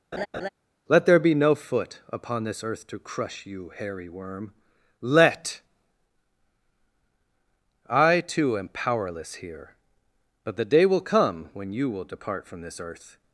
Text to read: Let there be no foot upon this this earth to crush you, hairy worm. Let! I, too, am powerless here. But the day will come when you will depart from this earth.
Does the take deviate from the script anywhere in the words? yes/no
yes